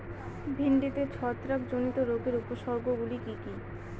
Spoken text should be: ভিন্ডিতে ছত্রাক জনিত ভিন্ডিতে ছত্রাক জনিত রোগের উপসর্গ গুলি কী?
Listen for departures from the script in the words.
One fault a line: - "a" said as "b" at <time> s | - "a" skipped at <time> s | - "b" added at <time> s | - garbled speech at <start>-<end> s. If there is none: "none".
- "ভিন্ডিতে ছত্রাক জনিত" skipped at 2.0 s
- "কি" added at 3.2 s